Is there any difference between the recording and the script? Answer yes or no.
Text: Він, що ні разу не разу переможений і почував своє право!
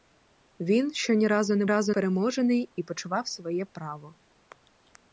no